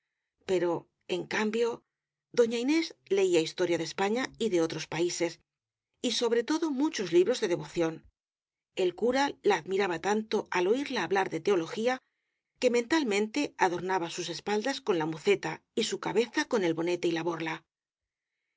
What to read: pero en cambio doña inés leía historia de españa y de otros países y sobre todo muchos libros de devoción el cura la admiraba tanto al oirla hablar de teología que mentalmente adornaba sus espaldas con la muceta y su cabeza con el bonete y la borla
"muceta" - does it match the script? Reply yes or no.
yes